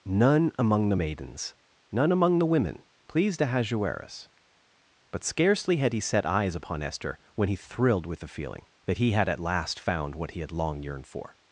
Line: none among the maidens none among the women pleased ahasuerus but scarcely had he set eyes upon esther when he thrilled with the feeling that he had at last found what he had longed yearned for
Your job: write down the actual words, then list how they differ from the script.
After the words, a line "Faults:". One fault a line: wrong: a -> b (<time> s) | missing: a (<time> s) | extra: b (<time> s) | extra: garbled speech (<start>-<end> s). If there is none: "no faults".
none among the maidens none among the women pleased ahasuerus but scarcely had he set eyes upon esther when he thrilled with the feeling that he had at last found what he had long yearned for
Faults:
wrong: longed -> long (10.5 s)